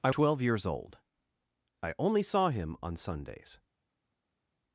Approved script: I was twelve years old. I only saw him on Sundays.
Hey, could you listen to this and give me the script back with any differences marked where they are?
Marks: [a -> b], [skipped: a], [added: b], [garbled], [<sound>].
I [skipped: was] twelve years old. I only saw him on Sundays.